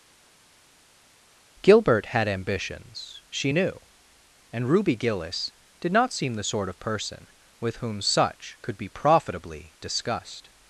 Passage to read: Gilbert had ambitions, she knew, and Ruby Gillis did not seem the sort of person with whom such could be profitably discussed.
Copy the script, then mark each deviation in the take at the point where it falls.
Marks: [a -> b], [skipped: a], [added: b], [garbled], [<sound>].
Gilbert had ambitions, she knew, and Ruby Gillis did not seem the sort of person with whom such could be profitably discussed.